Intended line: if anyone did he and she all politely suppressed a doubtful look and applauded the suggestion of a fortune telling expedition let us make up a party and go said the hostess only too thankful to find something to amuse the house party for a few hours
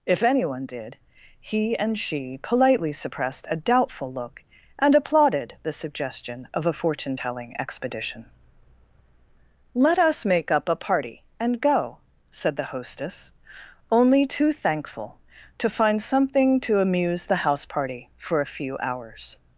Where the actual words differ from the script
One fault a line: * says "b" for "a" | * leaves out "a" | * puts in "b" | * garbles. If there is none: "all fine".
* leaves out "all"